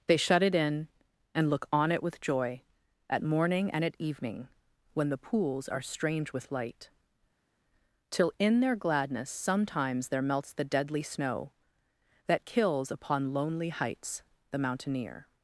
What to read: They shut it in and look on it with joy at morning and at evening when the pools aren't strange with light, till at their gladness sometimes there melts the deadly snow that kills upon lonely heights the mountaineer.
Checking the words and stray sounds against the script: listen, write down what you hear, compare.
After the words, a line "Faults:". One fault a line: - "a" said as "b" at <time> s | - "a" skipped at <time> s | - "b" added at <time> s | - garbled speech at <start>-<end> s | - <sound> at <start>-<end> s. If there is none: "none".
They shut it in and look on it with joy at morning and at evening when the pools are strange with light, till in their gladness sometimes there melts the deadly snow that kills upon lonely heights the mountaineer.
Faults:
- "aren't" said as "are" at 5.7 s
- "at" said as "in" at 8.4 s